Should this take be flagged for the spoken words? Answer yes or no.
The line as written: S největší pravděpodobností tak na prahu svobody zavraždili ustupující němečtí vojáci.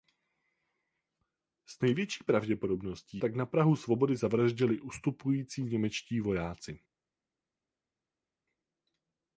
no